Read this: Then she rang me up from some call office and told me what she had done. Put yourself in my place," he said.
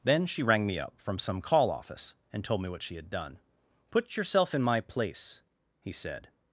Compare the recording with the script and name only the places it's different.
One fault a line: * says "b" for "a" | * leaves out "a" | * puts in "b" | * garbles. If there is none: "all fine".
all fine